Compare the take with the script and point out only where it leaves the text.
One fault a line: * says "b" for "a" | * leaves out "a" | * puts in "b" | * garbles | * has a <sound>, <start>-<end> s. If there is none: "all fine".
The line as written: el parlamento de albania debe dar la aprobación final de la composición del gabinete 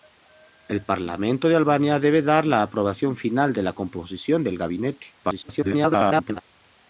* garbles